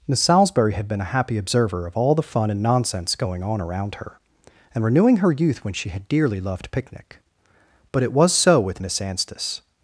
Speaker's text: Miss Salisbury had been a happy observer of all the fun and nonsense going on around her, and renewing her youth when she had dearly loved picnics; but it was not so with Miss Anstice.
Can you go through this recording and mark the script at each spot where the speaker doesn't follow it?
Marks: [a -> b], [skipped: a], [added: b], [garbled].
Miss Salisbury had been a happy observer of all the fun and nonsense going on around her, and renewing her youth when she had dearly loved [picnics; -> picnic] but it was [skipped: not] so with Miss Anstice.